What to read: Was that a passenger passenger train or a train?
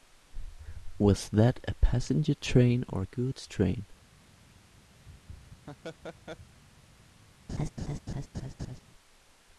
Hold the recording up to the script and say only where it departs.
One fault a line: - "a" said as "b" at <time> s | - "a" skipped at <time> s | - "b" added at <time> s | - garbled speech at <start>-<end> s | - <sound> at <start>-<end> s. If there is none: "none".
- "passenger" skipped at 2.3 s
- "goods" added at 3.0 s
- laugh at 5.1-6.6 s
- laugh at 7.5-8.8 s